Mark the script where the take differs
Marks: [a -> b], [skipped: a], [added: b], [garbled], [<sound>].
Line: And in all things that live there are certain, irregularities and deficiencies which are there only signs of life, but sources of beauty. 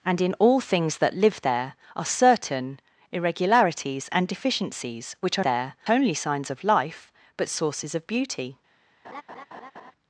And in all things that live there are certain, irregularities and deficiencies which are there only signs of life, but sources of beauty. [laugh]